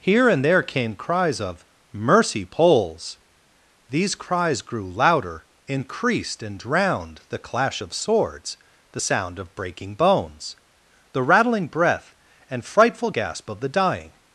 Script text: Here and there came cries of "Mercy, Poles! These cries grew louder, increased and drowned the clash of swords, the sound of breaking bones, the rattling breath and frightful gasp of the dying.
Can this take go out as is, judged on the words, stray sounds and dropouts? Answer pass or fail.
pass